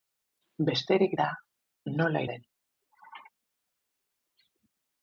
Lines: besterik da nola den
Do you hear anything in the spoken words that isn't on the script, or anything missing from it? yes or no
no